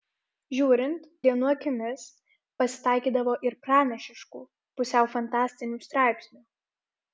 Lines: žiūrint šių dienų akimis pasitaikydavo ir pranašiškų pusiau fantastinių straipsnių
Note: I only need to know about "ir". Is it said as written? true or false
true